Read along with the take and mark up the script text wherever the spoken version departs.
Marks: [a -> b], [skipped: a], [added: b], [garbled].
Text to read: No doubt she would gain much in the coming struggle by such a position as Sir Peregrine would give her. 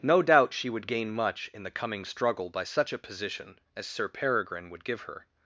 No doubt she would gain much in the coming struggle by such a position as Sir Peregrine would give her.